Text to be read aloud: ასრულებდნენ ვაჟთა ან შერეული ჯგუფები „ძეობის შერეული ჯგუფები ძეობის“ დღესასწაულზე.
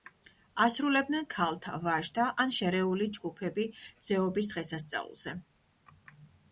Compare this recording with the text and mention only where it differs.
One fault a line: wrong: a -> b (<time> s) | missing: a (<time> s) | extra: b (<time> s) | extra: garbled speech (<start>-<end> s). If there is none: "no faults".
extra: ქალთა (1.3 s)
missing: შერეული ჯგუფები ძეობის (4.6 s)